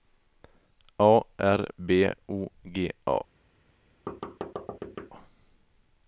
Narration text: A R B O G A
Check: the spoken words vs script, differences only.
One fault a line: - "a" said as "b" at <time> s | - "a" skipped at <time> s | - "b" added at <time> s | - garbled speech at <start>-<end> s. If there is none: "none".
none